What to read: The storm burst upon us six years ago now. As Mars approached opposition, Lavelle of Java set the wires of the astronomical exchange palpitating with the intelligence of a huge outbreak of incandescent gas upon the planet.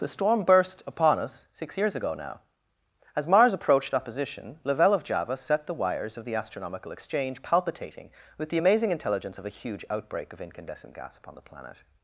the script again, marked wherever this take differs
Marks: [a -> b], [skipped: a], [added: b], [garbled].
The storm burst upon us six years ago now. As Mars approached opposition, Lavelle of Java set the wires of the astronomical exchange palpitating with the [added: amazing] intelligence of a huge outbreak of incandescent gas upon the planet.